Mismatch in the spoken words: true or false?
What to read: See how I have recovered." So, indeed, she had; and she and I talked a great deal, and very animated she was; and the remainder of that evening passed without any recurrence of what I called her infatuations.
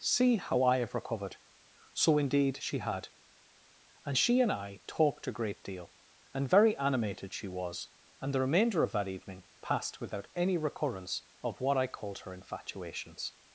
false